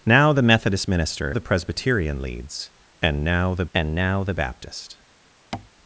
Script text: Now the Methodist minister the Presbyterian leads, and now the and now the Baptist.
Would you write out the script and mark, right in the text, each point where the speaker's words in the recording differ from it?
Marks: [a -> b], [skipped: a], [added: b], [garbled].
Now the Methodist minister the Presbyterian leads, and now the and now the Baptist.